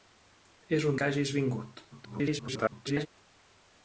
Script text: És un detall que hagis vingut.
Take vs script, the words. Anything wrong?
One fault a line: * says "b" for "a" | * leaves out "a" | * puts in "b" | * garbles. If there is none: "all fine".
* leaves out "detall"
* garbles